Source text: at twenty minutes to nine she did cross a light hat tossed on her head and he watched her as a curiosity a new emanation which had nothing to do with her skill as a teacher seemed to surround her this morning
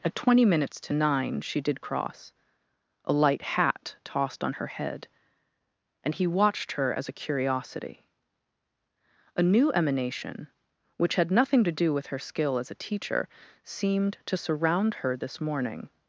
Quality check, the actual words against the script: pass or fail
pass